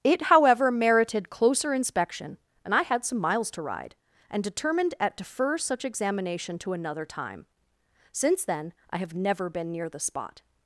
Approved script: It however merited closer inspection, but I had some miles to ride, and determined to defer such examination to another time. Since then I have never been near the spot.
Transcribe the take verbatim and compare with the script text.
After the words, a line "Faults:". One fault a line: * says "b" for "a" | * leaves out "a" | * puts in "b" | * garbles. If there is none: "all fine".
It however merited closer inspection, and I had some miles to ride, and determined at defer such examination to another time. Since then I have never been near the spot.
Faults:
* says "and" for "but"
* says "at" for "to"